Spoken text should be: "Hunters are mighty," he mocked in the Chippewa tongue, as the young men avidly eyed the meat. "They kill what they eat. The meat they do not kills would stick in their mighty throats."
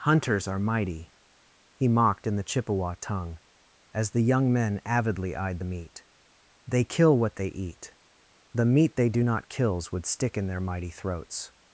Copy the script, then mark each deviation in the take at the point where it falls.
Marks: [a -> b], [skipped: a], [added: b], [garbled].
"Hunters are mighty," he mocked in the Chippewa tongue, as the young men avidly eyed the meat. "They kill what they eat. The meat they do not kills would stick in their mighty throats."